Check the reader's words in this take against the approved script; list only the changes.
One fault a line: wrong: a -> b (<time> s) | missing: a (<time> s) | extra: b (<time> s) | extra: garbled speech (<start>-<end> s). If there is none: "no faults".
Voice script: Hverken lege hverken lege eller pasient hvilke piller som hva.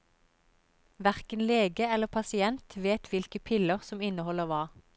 missing: hverken lege (1.9 s)
extra: vet (2.9 s)
extra: inneholder (4.0 s)